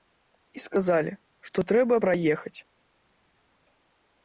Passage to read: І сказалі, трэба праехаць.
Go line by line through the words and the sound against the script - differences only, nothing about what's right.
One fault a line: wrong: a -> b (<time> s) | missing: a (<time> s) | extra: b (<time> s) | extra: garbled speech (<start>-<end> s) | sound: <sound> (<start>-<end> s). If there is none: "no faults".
extra: што (1.5 s)